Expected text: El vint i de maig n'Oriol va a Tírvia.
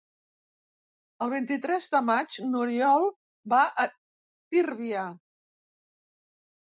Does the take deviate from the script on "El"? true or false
false